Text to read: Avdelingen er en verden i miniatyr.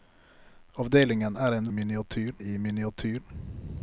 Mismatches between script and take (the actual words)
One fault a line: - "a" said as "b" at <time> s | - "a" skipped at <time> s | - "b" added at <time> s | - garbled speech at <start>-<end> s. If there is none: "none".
- "verden" said as "miniatyr" at 1.7 s